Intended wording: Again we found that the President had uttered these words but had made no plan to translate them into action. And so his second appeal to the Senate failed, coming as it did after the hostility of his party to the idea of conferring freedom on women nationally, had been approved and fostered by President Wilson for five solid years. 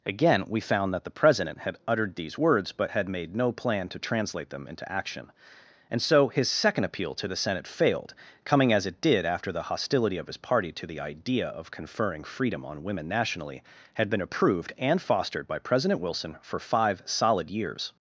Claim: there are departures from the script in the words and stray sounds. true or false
false